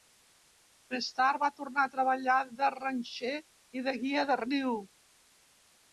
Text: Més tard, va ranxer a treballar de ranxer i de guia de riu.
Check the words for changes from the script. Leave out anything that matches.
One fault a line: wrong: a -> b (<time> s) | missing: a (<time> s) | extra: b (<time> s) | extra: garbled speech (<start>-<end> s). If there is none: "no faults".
wrong: ranxer -> tornar (1.6 s)